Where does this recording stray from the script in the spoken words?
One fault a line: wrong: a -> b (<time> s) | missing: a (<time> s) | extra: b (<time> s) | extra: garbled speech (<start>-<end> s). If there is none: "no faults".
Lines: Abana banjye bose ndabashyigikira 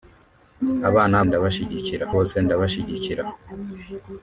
wrong: banjye -> ndabashyigikira (1.3 s)